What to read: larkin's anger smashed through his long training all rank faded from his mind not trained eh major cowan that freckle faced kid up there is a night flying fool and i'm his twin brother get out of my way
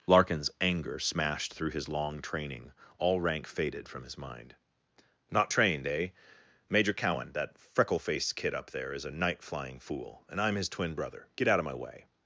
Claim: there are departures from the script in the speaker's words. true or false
false